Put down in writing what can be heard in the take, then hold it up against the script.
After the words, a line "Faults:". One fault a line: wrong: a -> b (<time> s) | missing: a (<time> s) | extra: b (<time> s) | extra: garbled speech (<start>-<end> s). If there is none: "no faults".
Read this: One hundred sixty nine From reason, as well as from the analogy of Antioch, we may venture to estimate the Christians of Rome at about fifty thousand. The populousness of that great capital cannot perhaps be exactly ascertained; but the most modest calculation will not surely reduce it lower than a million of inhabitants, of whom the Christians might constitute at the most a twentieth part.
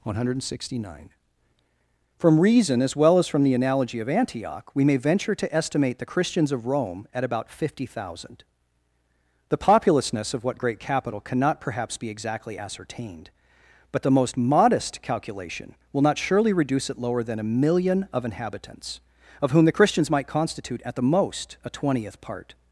One hundred sixty nine From reason, as well as from the analogy of Antioch, we may venture to estimate the Christians of Rome at about fifty thousand. The populousness of what great capital cannot perhaps be exactly ascertained; but the most modest calculation will not surely reduce it lower than a million of inhabitants, of whom the Christians might constitute at the most a twentieth part.
Faults:
wrong: that -> what (10.4 s)